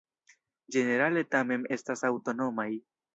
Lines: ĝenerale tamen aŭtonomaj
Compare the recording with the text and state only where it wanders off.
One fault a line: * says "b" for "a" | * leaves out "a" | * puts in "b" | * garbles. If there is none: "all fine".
* puts in "estas"